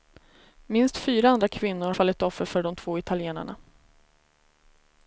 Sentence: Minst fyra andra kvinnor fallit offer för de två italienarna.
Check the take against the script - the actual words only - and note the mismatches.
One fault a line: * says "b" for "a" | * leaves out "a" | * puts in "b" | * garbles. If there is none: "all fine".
all fine